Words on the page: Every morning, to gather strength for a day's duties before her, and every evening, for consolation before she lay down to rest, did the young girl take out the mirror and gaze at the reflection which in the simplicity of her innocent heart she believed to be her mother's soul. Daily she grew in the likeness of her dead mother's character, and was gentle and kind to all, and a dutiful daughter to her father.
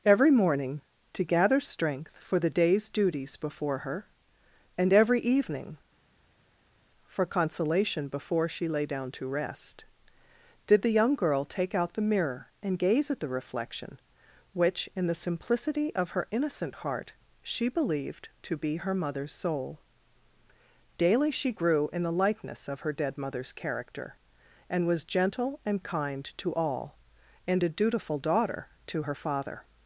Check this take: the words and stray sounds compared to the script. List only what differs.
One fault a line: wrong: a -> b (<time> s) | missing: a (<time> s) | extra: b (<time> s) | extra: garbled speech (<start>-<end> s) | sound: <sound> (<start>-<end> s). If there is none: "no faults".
wrong: a -> the (2.4 s)